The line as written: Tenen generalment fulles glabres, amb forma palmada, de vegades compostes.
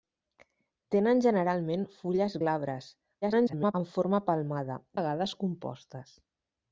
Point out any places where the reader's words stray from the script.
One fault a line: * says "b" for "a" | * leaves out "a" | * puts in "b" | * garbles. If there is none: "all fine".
* garbles
* leaves out "de"